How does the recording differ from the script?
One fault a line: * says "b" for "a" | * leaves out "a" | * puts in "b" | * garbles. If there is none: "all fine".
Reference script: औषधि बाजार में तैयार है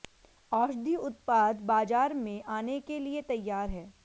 * puts in "उत्पाद"
* puts in "आने के लिए"